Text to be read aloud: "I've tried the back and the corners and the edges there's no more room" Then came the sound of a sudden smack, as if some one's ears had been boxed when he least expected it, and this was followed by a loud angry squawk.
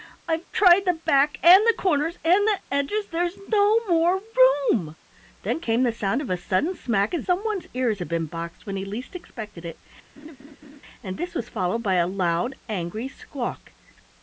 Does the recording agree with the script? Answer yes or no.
no